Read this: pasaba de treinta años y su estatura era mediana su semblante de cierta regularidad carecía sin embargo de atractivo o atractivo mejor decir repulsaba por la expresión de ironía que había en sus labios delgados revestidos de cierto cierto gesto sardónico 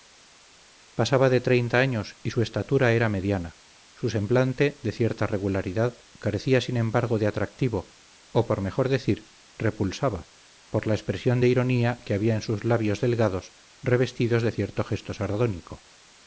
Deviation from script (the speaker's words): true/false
true